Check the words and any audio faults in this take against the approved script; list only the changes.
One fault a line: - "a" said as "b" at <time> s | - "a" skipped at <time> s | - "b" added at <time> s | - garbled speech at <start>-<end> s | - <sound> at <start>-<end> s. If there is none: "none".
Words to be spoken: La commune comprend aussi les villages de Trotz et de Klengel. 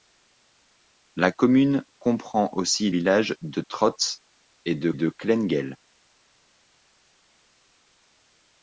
- "les" skipped at 2.9 s
- "de" added at 4.9 s